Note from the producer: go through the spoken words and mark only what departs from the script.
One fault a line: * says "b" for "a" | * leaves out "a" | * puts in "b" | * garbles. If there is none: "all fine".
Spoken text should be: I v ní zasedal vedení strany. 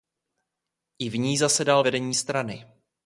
all fine